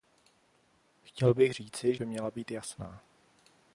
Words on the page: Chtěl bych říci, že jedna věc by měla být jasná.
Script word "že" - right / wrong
wrong